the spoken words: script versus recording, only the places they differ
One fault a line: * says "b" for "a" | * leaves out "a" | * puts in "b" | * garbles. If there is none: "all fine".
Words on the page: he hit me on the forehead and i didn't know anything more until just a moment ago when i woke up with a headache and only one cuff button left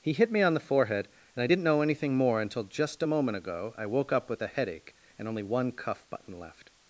* leaves out "when"